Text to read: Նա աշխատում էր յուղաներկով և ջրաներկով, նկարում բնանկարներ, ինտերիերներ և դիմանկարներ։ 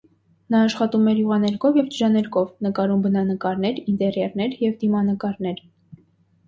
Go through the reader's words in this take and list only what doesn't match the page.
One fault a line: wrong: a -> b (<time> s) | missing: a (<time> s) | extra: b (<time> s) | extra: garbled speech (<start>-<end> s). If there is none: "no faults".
no faults